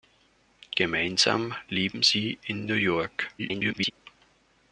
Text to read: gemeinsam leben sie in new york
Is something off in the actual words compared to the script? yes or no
yes